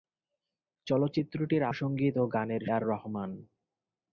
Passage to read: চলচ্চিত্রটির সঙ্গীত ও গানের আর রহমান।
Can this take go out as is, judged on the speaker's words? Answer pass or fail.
pass